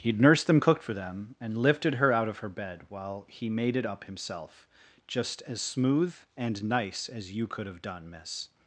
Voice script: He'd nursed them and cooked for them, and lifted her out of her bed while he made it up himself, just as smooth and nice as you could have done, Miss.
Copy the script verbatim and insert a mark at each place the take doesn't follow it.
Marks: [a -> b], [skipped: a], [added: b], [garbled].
He'd nursed them [skipped: and] cooked for them, and lifted her out of her bed while he made it up himself, just as smooth and nice as you could have done, Miss.